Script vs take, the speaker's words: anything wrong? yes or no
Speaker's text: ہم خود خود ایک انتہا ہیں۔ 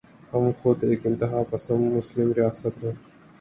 yes